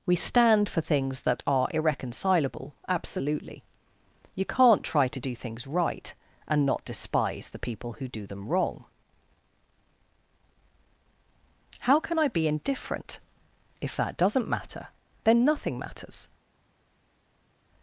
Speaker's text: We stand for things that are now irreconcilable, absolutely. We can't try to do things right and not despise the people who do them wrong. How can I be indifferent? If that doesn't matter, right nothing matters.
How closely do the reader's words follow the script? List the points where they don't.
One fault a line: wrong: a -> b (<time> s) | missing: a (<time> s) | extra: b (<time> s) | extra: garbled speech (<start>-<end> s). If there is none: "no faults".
missing: now (1.7 s)
wrong: We -> You (4.3 s)
wrong: right -> then (15.2 s)